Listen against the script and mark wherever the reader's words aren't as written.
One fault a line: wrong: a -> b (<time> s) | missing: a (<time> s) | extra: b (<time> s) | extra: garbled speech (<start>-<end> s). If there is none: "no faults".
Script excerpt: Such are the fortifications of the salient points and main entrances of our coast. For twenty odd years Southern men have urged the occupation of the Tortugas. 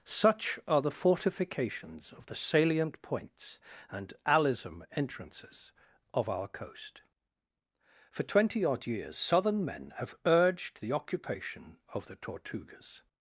wrong: main -> alism (4.3 s)